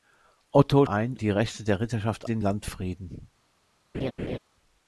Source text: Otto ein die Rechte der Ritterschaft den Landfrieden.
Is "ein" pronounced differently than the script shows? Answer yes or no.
no